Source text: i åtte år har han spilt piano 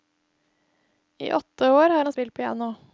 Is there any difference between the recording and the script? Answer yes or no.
no